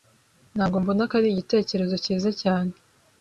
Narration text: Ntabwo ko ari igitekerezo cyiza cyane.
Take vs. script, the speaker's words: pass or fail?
fail